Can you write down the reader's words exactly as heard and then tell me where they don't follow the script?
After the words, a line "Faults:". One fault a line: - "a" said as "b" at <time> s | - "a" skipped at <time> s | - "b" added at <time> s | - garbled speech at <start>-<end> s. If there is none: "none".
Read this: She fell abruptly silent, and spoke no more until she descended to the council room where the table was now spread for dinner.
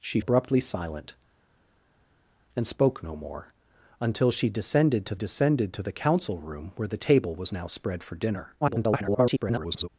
She abruptly silent, and spoke no more until she descended to descended to the council room where the table was now spread for dinner. [garbled]
Faults:
- "fell" skipped at 0.2 s
- "descended to" added at 5.1 s
- garbled speech at 8.6-9.9 s